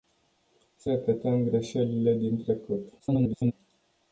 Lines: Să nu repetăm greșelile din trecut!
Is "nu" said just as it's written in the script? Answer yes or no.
no